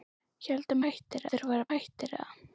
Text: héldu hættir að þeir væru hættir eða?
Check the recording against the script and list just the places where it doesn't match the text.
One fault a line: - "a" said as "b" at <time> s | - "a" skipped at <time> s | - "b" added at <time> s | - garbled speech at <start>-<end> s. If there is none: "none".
none